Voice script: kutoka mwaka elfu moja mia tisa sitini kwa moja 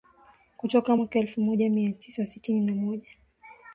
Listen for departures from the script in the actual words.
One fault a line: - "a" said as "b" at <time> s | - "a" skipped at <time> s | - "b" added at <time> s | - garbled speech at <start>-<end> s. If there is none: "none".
- "kwa" said as "na" at 2.6 s